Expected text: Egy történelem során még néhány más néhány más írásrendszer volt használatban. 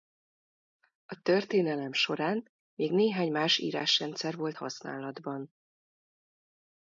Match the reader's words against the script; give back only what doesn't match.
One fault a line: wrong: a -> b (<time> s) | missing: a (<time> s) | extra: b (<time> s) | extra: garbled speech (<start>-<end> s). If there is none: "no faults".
wrong: Egy -> A (1.1 s)
missing: néhány más (3.6 s)